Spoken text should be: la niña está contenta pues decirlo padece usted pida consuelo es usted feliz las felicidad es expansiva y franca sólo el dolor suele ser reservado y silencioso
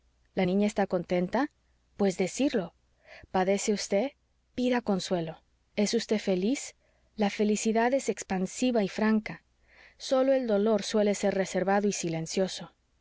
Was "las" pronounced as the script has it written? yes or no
no